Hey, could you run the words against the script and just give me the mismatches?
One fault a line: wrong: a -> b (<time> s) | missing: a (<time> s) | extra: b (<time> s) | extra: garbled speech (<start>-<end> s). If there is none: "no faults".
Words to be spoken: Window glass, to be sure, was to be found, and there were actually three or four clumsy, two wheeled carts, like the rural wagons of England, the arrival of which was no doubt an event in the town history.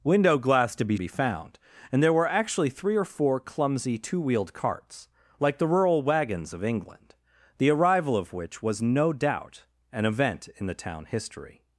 missing: sure was to (1.0 s)